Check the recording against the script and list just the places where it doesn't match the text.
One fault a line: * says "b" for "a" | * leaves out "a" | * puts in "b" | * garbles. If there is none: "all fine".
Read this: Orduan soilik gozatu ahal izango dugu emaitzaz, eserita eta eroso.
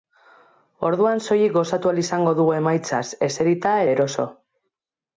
* leaves out "eta"